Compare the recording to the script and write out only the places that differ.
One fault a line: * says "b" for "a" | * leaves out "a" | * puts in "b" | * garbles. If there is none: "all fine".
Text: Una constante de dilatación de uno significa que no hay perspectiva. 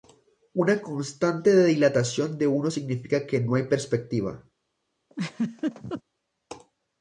all fine